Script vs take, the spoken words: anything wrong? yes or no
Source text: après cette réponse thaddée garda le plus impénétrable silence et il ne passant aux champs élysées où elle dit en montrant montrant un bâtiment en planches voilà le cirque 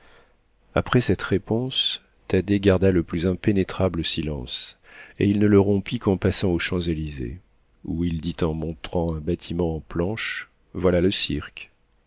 yes